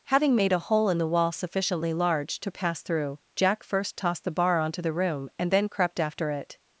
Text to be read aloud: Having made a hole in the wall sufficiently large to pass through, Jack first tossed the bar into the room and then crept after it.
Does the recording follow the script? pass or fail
fail